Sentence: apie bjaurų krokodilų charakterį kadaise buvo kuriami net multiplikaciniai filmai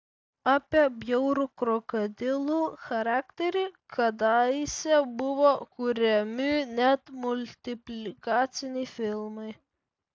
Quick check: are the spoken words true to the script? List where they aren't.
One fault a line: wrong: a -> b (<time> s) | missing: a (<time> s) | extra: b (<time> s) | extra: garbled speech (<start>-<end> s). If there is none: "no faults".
no faults